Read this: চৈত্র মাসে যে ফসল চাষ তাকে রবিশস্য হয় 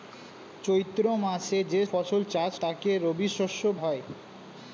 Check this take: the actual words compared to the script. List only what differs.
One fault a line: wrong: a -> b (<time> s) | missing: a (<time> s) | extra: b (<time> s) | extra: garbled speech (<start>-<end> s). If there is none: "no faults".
no faults